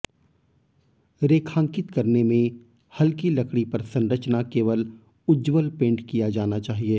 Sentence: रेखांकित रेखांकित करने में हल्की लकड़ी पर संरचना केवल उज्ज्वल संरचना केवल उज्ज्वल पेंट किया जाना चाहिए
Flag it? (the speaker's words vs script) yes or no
yes